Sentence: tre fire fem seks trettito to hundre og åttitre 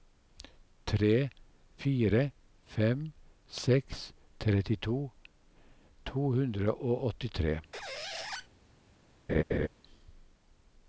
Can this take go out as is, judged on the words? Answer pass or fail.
pass